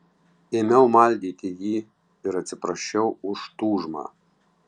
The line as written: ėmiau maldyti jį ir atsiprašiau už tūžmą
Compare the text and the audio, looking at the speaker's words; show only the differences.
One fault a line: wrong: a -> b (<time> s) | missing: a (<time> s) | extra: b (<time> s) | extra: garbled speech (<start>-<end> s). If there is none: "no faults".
no faults